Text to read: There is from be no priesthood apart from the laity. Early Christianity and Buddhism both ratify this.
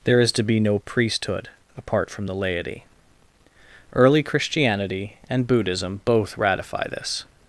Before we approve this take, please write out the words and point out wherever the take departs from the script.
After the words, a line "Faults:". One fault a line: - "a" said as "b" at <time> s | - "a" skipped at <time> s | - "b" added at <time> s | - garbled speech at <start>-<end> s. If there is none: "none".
There is to be no priesthood apart from the laity. Early Christianity and Buddhism both ratify this.
Faults:
- "from" said as "to" at 0.3 s